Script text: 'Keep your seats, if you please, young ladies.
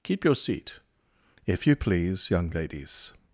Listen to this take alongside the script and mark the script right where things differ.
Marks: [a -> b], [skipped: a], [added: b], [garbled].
'Keep your [seats, -> seat] if you please, young ladies.